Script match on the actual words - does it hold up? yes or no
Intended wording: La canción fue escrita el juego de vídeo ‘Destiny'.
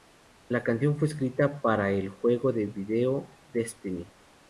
no